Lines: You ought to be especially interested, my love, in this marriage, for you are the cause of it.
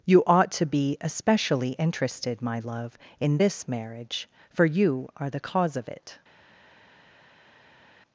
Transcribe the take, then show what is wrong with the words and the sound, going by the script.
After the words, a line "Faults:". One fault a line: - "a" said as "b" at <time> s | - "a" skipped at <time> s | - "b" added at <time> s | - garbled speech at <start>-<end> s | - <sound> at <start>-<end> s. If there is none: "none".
You ought to be especially interested, my love, in this marriage, for you are the cause of it.
Faults:
none